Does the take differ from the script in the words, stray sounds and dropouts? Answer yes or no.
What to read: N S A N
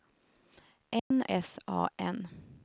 yes